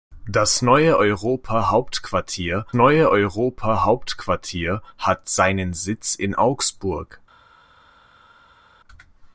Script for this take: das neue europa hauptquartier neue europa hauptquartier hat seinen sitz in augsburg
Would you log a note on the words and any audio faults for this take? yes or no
no